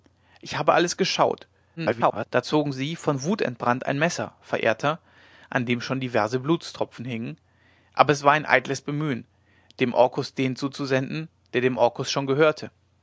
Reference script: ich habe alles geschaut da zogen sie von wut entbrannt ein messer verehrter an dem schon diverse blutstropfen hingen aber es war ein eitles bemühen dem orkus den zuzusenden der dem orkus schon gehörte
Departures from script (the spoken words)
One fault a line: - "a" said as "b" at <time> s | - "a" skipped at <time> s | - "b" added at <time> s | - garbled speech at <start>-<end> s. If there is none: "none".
- garbled speech at 1.8-2.3 s